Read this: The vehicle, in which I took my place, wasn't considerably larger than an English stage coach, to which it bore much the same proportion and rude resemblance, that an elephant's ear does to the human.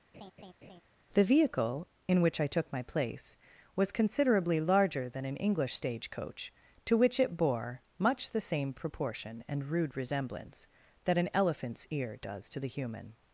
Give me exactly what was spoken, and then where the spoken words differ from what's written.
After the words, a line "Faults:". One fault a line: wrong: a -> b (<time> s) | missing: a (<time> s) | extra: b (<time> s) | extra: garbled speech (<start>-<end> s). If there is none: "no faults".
The vehicle, in which I took my place, was considerably larger than an English stage coach, to which it bore much the same proportion and rude resemblance, that an elephant's ear does to the human.
Faults:
wrong: wasn't -> was (3.8 s)